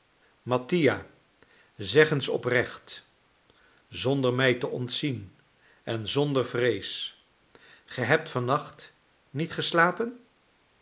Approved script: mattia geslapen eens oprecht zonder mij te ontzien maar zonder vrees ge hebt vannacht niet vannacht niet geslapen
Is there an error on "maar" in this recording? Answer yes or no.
yes